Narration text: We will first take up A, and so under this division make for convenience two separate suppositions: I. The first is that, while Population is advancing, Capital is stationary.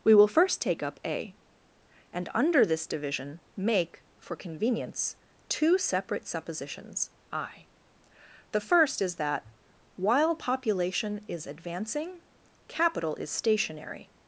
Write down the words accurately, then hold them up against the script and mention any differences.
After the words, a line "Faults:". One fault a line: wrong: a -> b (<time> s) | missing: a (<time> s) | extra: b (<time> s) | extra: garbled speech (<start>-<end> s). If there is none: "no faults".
We will first take up A, and under this division make for convenience two separate suppositions: I. The first is that, while Population is advancing, Capital is stationary.
Faults:
missing: so (2.3 s)